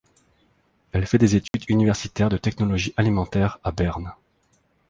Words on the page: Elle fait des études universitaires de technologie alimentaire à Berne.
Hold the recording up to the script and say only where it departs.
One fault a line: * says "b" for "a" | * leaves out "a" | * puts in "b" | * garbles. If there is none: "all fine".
all fine